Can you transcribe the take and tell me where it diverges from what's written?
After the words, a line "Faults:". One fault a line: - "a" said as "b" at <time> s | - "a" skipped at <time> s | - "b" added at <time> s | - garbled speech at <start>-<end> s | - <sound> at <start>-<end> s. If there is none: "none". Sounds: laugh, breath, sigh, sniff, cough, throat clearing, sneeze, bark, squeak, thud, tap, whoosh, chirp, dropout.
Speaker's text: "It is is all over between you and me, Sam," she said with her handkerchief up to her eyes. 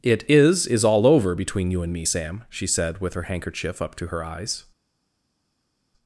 "It is is all over between you and me, Sam," she said with her handkerchief up to her eyes.
Faults:
none